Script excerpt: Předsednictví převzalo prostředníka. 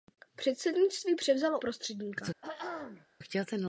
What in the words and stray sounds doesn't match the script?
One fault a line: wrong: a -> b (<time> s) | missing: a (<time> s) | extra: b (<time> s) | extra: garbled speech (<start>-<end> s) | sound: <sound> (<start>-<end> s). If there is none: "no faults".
sound: throat clearing (2.4-3.1 s)